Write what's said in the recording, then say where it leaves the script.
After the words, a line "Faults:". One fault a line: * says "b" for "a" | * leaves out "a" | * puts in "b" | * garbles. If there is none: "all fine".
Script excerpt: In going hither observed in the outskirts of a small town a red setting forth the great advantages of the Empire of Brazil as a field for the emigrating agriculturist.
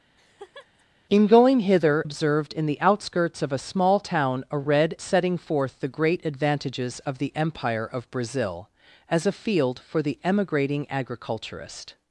In going hither observed in the outskirts of a small town a red setting forth the great advantages of the Empire of Brazil as a field for the emigrating agriculturist.
Faults:
all fine